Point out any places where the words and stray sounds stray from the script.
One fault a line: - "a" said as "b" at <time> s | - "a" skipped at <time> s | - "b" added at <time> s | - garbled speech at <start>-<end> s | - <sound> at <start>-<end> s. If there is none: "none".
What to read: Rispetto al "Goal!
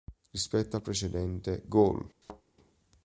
- "precedente" added at 0.8 s
- thud at 2.2-2.4 s